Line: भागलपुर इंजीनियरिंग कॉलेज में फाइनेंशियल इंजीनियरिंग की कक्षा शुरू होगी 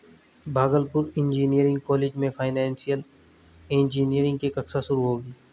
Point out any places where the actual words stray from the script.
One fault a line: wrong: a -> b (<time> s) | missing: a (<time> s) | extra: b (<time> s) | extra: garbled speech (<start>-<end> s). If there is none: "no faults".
no faults